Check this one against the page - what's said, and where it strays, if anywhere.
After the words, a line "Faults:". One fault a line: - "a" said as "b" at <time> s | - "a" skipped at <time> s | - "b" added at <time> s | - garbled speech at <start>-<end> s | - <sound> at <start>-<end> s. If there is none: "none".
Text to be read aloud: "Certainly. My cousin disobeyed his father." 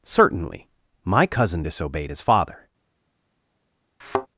"Certainly. My cousin disobeyed his father."
Faults:
- thud at 4.0-4.3 s